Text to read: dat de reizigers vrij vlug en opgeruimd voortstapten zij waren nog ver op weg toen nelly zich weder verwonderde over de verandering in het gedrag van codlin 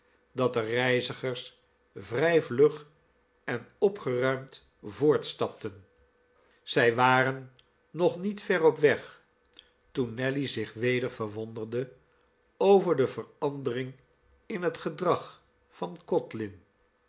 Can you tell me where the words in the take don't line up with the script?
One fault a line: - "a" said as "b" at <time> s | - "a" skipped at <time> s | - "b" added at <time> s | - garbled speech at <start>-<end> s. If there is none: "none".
- "niet" added at 8.2 s